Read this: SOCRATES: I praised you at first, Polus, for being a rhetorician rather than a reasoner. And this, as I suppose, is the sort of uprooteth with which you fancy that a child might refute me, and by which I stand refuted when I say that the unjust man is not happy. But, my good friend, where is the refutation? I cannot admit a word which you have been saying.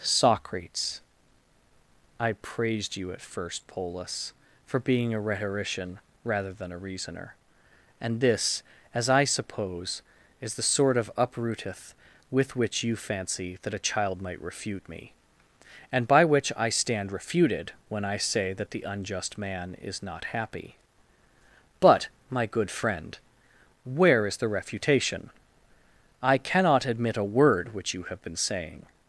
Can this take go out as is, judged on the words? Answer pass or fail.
pass